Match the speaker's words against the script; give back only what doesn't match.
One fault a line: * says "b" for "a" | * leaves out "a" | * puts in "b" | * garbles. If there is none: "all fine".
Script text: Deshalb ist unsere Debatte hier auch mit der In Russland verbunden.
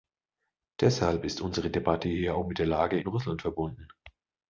* puts in "Lage"